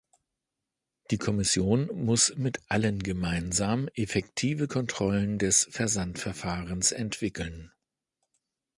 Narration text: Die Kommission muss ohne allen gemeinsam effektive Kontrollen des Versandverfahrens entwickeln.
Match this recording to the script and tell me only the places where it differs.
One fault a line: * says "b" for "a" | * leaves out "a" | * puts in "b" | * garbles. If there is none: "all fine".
* says "mit" for "ohne"